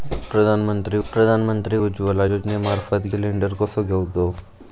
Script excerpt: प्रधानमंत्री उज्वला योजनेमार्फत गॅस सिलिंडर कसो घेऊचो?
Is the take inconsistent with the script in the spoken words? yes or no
yes